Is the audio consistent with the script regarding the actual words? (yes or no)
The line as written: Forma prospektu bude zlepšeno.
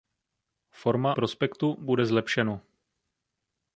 yes